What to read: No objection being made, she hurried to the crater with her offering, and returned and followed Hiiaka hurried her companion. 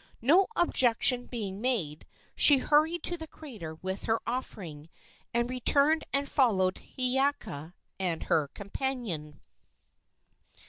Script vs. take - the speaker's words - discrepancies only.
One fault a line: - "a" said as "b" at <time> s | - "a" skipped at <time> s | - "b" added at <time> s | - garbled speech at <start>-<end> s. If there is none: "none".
- "hurried" said as "and" at 8.0 s